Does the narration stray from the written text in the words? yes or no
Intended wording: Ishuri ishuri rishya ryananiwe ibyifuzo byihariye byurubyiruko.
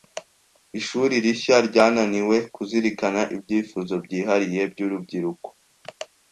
yes